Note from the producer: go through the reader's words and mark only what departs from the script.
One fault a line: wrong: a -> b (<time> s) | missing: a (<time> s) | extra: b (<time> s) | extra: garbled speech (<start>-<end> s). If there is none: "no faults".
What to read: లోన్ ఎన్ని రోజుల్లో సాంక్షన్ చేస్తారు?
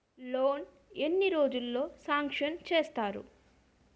no faults